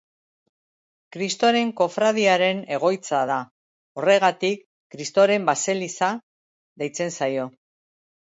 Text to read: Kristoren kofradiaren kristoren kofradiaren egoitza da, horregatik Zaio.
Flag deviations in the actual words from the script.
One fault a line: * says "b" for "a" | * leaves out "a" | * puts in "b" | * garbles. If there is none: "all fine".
* leaves out "kristoren kofradiaren"
* puts in "Kristoren baseliza deitzen"